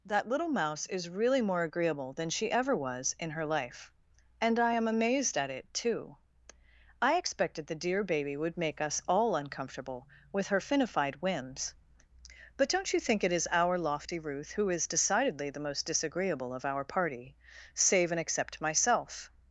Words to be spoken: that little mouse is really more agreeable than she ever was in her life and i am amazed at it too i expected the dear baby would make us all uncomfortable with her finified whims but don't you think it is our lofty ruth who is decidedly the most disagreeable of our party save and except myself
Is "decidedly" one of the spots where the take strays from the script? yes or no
no